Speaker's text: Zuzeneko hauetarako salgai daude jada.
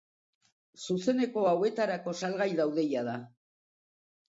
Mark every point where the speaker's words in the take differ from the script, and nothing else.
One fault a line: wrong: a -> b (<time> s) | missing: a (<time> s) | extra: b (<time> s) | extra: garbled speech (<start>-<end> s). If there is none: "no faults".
no faults